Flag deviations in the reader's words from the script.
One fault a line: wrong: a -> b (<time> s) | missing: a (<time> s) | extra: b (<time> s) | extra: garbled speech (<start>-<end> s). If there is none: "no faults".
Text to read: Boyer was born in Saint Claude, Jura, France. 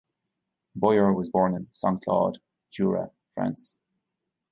no faults